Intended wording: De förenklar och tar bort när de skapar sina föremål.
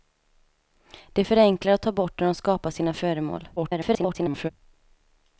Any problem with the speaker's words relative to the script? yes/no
yes